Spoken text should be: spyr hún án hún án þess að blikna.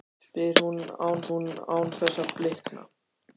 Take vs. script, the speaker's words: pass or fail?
pass